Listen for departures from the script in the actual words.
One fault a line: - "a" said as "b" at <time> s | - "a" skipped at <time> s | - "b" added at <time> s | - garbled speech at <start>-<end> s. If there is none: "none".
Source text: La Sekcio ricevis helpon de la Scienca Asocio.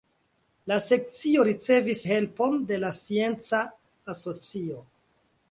none